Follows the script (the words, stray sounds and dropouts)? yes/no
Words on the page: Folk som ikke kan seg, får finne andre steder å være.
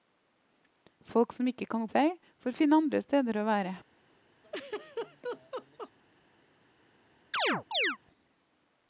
no